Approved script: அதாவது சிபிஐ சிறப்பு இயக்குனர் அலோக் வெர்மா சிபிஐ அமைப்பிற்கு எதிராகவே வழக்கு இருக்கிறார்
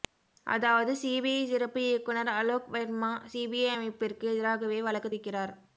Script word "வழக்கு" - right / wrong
right